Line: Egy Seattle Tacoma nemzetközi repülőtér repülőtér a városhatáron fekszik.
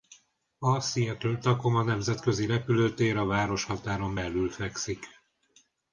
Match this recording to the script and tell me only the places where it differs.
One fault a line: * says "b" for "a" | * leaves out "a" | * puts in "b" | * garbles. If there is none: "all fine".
* says "A" for "Egy"
* leaves out "repülőtér"
* puts in "belül"